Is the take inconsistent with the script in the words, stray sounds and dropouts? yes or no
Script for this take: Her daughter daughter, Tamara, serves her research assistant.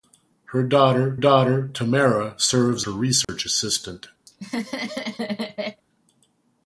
yes